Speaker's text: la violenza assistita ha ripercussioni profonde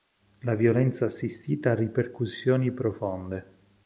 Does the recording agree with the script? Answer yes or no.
yes